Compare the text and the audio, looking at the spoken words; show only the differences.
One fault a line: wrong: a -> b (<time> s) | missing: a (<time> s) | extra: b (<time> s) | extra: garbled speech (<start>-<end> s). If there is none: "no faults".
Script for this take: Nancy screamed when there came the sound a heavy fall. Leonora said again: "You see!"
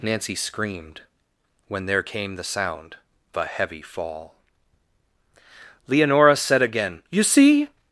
no faults